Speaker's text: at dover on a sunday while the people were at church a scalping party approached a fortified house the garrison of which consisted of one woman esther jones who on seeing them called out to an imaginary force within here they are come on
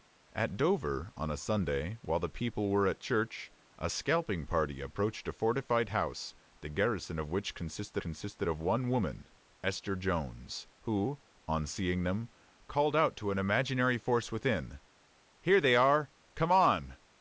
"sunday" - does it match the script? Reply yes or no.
yes